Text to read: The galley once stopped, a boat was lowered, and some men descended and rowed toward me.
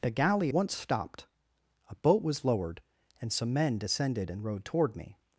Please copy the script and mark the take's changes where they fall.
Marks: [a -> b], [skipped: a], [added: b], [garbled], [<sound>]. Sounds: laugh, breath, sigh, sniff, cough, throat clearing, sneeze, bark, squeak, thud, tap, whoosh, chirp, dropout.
The galley once stopped, a boat was lowered, and some men descended and rowed toward me.